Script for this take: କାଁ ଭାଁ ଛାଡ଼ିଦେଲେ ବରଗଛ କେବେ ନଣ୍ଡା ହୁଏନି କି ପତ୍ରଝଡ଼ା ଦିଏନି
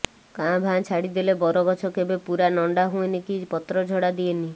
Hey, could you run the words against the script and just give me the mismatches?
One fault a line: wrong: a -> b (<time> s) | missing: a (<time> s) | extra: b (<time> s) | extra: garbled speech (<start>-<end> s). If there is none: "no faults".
extra: ପୂରା (2.2 s)